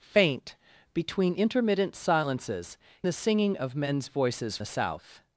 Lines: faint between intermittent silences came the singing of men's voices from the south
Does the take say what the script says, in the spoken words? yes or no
no